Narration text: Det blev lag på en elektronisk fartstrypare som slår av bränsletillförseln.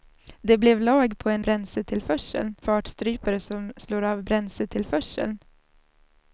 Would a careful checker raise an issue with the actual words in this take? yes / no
yes